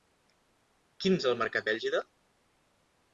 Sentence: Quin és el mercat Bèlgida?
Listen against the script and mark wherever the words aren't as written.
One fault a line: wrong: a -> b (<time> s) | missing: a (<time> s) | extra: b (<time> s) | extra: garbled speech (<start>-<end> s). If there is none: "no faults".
no faults